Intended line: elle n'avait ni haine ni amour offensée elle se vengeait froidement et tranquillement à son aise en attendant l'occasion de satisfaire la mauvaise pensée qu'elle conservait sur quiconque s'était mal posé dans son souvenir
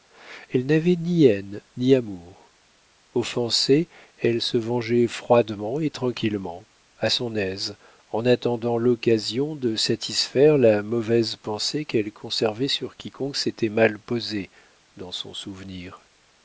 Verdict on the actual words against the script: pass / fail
pass